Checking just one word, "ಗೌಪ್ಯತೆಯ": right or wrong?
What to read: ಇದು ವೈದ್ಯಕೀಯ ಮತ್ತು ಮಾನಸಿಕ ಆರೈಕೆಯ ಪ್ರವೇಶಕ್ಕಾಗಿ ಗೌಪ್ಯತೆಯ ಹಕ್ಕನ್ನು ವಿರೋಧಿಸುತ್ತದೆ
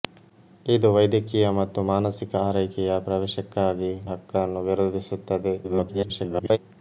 wrong